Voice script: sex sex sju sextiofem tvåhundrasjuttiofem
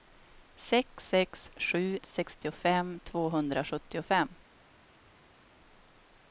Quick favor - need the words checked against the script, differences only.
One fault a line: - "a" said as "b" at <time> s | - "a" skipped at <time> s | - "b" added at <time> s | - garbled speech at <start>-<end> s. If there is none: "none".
none